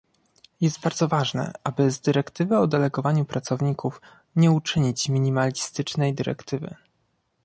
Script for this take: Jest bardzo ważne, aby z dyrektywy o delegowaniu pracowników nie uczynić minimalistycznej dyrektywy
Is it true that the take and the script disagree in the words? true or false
false